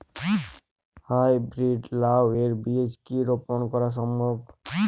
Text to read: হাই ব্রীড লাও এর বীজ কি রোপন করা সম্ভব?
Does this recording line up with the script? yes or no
yes